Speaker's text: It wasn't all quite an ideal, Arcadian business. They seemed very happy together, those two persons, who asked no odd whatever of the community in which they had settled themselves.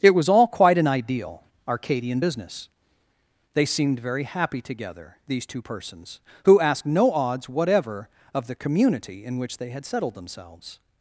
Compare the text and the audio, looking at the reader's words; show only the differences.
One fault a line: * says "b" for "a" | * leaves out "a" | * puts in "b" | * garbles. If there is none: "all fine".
* says "was" for "wasn't"
* says "these" for "those"
* says "odds" for "odd"